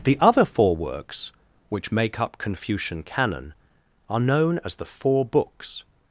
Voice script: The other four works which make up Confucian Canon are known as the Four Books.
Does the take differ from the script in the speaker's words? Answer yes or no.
no